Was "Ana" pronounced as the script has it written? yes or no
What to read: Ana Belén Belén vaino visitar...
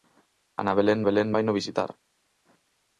yes